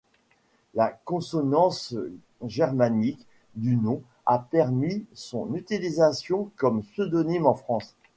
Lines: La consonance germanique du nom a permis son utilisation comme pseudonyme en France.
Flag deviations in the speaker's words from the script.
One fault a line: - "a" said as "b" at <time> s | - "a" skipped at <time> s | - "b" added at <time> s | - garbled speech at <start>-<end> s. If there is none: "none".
none